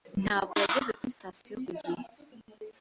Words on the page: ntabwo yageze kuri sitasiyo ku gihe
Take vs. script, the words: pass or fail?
pass